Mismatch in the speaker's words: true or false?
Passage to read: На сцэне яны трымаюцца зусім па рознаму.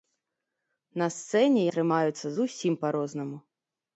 true